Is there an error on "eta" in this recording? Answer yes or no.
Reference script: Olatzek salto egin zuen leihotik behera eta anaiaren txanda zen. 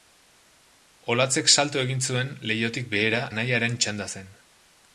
yes